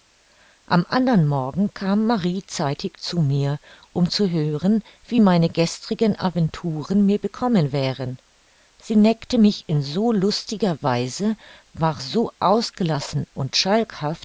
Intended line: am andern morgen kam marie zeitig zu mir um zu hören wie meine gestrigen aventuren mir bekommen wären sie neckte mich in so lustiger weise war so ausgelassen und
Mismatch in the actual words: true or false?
false